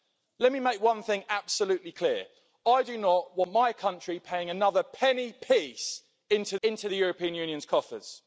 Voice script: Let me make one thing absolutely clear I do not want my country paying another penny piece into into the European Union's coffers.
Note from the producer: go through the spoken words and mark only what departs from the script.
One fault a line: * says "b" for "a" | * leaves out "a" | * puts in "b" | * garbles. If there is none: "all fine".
all fine